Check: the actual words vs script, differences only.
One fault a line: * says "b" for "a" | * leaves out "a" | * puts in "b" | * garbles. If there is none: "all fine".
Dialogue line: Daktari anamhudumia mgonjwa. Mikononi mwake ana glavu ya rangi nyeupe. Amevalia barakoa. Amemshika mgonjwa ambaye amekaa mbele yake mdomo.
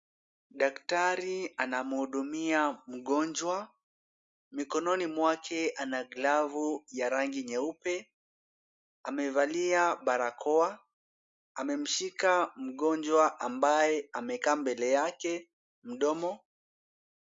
all fine